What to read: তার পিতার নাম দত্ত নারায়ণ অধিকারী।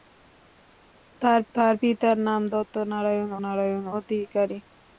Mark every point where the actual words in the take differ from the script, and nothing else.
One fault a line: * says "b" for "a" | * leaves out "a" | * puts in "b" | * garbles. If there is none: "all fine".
* puts in "তার"
* puts in "নারায়ণ"